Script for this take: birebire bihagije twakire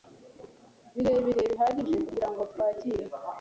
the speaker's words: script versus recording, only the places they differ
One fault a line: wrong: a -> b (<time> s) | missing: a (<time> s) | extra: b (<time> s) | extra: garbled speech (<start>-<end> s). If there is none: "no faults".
extra: kugirango (2.1 s)